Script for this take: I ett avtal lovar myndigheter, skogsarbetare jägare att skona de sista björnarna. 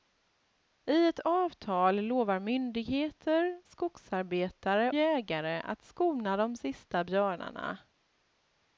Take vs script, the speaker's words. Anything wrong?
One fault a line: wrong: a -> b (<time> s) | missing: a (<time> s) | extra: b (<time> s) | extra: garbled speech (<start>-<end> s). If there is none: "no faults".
no faults